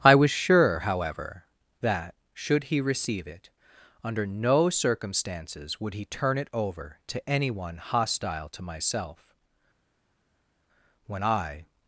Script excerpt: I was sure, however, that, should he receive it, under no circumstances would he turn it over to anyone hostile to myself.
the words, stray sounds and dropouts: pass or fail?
fail